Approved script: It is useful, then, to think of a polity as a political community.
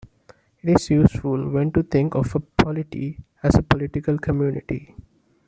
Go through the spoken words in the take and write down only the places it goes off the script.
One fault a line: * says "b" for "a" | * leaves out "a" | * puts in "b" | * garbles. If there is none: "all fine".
all fine